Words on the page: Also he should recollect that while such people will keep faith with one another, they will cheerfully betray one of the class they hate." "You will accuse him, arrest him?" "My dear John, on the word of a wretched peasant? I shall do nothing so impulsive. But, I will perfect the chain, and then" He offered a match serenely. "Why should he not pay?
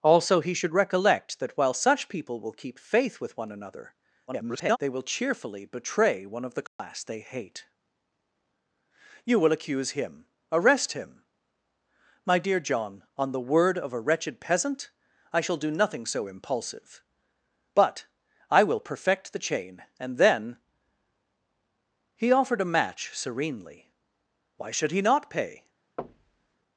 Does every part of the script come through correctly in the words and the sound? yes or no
no